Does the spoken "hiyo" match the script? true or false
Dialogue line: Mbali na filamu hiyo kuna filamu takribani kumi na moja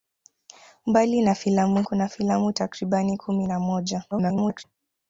false